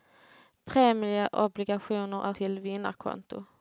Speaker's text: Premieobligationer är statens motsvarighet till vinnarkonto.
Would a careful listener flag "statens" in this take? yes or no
yes